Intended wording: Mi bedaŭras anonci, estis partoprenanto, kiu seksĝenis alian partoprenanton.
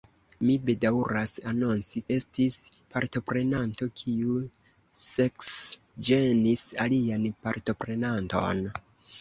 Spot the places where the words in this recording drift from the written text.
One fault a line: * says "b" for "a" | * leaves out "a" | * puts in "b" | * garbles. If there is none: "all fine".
all fine